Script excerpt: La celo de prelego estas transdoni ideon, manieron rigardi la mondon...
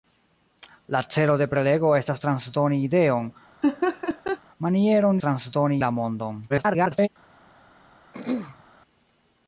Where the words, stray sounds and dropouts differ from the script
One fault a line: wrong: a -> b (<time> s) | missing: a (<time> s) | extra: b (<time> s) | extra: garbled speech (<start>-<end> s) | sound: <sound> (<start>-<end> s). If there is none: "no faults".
sound: laugh (3.6-4.4 s)
wrong: rigardi -> transdoni (5.2 s)
extra: garbled speech (6.5-7.1 s)
sound: throat clearing (8.1-8.6 s)